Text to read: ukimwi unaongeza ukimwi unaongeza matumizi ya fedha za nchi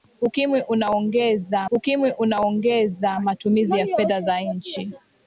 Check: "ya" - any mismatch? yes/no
no